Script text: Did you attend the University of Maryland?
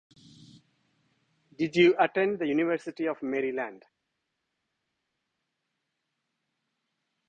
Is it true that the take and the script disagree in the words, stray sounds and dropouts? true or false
false